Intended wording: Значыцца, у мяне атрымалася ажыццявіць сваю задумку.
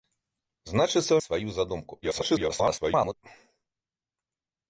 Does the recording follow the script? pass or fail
fail